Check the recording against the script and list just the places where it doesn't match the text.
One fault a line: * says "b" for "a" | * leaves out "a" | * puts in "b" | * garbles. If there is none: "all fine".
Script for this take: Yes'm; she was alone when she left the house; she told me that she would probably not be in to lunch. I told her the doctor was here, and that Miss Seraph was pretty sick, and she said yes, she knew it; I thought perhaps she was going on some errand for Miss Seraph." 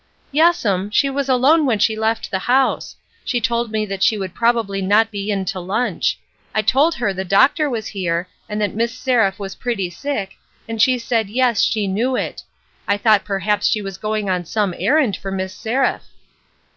all fine